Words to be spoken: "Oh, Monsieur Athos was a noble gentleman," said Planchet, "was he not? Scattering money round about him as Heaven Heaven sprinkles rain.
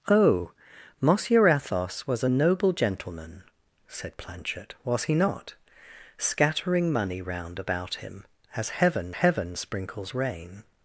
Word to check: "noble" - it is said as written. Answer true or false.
true